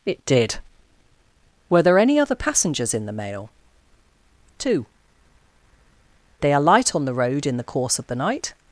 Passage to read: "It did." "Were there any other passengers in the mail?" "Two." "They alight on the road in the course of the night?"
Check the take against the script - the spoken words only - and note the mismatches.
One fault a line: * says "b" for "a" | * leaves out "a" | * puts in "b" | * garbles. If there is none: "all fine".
all fine